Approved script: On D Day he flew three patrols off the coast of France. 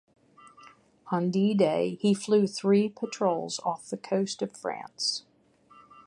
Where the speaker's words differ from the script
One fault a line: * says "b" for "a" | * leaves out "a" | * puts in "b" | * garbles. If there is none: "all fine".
all fine